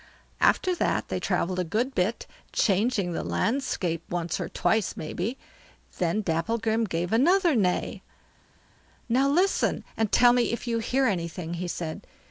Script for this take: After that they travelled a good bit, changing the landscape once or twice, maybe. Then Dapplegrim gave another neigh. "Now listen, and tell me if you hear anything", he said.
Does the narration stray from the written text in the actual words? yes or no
no